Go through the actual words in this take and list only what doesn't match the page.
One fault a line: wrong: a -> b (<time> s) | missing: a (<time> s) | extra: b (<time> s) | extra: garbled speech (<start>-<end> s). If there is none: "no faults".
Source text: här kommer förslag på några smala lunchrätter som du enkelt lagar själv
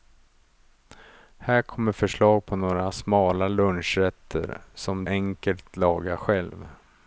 missing: du (5.0 s)